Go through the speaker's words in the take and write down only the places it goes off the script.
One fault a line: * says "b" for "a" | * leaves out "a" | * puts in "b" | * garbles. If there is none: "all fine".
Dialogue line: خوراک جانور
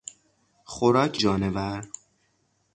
all fine